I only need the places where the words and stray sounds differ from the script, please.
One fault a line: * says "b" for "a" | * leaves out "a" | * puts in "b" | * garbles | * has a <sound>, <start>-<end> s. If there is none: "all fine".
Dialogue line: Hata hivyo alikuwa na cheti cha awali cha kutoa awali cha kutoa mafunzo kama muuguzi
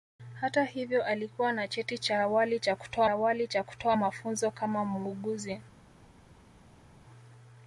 all fine